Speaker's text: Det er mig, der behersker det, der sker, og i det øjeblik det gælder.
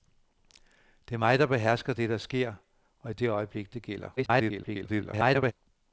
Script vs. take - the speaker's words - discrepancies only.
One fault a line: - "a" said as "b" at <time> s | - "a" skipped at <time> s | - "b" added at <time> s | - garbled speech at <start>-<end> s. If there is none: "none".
- garbled speech at 4.2-5.5 s